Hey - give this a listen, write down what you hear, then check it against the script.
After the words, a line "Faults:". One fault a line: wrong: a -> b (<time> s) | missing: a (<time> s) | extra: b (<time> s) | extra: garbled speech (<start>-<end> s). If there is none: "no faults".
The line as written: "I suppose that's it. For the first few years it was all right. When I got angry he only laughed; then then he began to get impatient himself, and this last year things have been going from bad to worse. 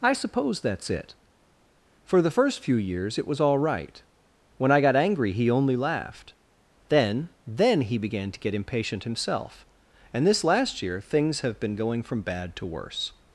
"I suppose that's it. For the first few years it was all right. When I got angry he only laughed; then then he began to get impatient himself, and this last year things have been going from bad to worse.
Faults:
no faults